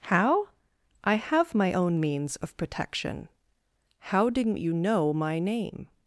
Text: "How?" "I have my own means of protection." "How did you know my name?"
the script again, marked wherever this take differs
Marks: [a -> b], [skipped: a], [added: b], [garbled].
"How?" "I have my own means of protection." "How [did -> didn't] you know my name?"